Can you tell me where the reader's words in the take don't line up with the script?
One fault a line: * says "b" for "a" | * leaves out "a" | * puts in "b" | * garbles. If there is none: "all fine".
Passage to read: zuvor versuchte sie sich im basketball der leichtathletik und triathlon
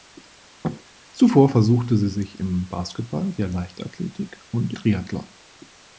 all fine